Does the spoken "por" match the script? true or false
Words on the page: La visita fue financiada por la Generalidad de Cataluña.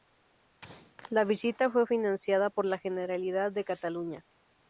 true